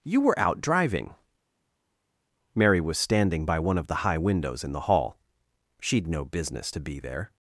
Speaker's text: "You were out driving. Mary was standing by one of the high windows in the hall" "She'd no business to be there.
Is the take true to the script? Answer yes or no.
yes